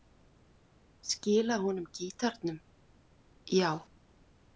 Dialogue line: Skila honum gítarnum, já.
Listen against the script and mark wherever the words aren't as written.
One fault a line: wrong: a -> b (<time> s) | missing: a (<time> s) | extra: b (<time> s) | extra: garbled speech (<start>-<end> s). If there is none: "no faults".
no faults